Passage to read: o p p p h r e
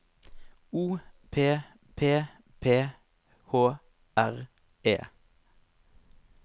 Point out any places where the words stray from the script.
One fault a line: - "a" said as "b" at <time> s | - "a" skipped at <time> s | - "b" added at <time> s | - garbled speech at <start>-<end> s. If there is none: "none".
none